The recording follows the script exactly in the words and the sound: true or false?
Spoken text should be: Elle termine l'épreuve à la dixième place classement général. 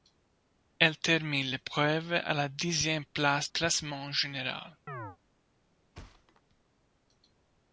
false